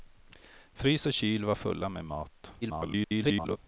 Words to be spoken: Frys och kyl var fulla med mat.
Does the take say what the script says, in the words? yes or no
no